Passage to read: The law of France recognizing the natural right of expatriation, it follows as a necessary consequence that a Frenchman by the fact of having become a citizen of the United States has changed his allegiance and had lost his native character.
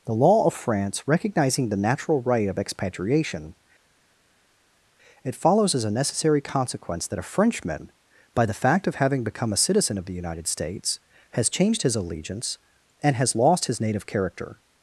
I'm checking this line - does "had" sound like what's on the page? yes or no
no